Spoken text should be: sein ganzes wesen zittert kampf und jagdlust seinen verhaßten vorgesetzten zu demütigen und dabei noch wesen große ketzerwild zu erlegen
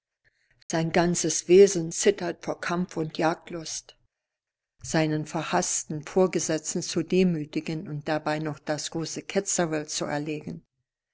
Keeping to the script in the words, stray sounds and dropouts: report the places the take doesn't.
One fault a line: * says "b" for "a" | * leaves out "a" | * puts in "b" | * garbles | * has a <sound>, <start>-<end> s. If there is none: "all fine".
* has a dropout, 0.6-0.7 s
* puts in "vor"
* says "das" for "wesen"